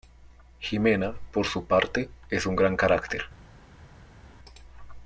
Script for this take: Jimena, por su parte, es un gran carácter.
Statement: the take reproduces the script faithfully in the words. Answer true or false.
true